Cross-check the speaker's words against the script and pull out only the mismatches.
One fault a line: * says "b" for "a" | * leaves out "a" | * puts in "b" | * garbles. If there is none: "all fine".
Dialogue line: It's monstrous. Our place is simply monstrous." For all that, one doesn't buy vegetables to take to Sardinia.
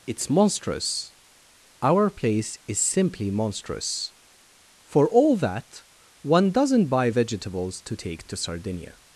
all fine